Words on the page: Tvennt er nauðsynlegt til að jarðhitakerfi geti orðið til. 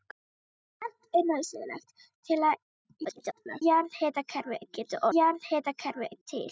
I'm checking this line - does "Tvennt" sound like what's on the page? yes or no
yes